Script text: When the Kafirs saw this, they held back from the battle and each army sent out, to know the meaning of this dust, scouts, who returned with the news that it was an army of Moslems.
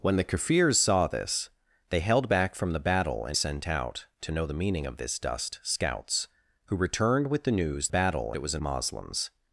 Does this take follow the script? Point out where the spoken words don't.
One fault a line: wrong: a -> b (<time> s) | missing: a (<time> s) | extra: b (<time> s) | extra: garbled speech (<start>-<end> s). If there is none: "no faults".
missing: each army (3.4 s)
wrong: that -> battle (7.9 s)
missing: army of (8.6 s)